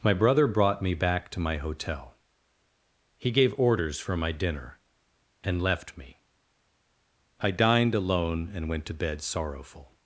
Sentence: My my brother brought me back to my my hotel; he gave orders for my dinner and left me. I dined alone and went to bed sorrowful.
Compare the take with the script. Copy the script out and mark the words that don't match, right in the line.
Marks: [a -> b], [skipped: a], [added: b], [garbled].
My [skipped: my] brother brought me back to my [skipped: my] hotel; he gave orders for my dinner and left me. I dined alone and went to bed sorrowful.